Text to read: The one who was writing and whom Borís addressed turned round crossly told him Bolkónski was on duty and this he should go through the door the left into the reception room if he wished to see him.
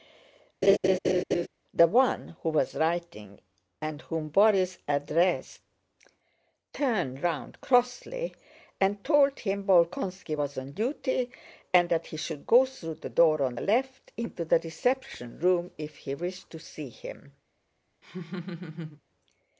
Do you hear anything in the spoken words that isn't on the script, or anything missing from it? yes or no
yes